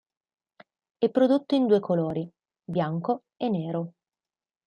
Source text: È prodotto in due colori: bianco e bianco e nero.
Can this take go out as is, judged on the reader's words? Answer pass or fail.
fail